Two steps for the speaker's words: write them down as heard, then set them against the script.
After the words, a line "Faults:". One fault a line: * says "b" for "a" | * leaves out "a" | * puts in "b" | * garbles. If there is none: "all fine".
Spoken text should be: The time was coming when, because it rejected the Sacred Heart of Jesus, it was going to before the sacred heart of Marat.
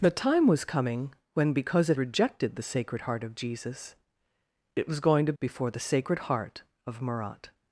The time was coming when, because it rejected the Sacred Heart of Jesus, it was going to before the sacred heart of Marat.
Faults:
all fine